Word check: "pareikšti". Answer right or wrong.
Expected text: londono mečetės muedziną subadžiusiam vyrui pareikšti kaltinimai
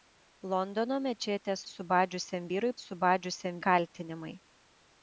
wrong